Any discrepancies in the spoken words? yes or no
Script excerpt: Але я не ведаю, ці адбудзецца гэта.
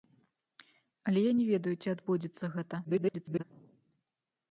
yes